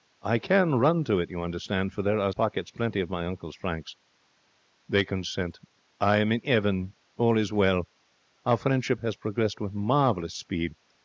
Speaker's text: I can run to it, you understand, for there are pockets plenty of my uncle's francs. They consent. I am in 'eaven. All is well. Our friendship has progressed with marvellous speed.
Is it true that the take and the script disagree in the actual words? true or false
false